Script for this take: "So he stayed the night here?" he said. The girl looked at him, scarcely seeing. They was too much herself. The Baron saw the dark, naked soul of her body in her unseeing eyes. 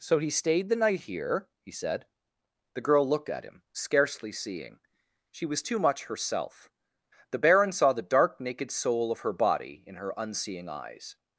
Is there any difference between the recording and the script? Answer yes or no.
yes